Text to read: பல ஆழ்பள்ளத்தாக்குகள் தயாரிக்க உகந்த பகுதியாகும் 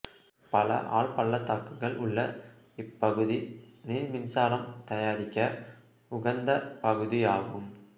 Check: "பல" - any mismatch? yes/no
no